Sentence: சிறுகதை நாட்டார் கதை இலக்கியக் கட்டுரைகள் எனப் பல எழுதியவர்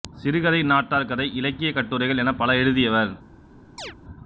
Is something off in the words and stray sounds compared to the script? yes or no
yes